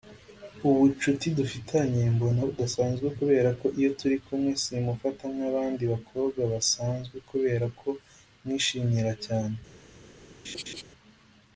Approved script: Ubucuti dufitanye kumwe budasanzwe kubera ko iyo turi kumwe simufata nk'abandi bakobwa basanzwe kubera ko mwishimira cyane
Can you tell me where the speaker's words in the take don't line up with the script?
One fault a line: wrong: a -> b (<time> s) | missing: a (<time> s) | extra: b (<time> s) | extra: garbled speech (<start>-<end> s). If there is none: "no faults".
wrong: kumwe -> mbona (2.1 s)